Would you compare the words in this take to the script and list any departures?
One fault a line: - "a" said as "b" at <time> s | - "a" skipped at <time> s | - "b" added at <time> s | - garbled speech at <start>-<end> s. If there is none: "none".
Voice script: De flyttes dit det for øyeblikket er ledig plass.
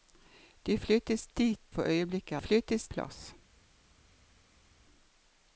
- "det" skipped at 1.6 s
- "ledig" said as "flyttes" at 2.4 s